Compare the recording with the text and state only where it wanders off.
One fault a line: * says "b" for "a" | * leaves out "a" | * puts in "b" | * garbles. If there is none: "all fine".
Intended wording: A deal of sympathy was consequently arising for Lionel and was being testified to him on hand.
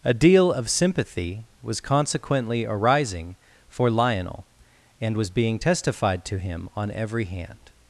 * puts in "every"